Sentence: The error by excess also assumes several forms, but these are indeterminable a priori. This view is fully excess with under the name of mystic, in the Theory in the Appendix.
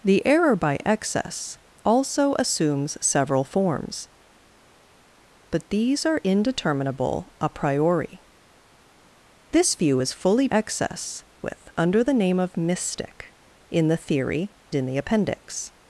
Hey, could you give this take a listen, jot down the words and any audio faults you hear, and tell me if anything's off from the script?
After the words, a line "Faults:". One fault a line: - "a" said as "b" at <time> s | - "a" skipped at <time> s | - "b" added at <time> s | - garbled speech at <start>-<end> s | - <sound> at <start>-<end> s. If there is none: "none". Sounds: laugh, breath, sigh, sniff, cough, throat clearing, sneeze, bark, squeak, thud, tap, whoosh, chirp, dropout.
The error by excess also assumes several forms, but these are indeterminable a priori. This view is fully excess with under the name of mystic, in the Theory in the Appendix.
Faults:
none